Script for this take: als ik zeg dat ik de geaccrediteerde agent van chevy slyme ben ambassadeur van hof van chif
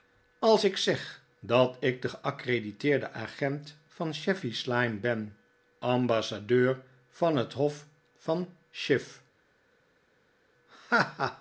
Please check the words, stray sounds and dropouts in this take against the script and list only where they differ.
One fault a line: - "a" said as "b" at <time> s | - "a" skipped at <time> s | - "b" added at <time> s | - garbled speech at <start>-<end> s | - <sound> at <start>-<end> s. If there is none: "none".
- "het" added at 7.4 s